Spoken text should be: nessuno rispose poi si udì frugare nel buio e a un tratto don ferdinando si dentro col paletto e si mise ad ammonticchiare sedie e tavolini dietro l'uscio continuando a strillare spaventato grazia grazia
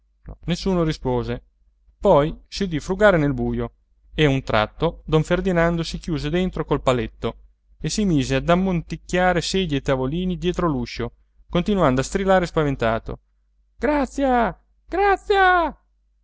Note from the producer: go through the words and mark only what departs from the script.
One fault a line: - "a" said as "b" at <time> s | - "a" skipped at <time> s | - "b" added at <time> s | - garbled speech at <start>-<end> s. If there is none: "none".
- "chiuse" added at 6.0 s